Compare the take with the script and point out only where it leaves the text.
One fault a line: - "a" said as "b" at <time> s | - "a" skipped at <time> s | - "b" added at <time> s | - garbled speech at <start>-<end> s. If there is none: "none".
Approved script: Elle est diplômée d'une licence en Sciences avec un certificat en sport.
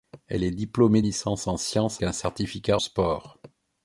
- "d'une" skipped at 1.0 s
- "avec" skipped at 2.0 s
- "en" skipped at 2.8 s